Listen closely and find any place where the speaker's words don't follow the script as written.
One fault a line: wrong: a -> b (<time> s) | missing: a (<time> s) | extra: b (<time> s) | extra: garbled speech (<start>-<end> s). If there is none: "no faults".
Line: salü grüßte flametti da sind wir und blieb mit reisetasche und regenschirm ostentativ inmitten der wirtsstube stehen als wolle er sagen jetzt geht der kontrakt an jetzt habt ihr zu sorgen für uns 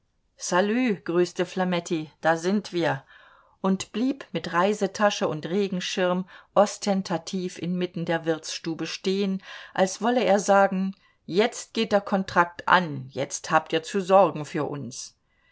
no faults